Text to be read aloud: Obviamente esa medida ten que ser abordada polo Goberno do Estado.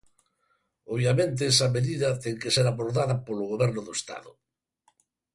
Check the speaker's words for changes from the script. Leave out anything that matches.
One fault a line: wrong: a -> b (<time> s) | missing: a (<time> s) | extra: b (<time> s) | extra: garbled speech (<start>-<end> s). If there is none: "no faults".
no faults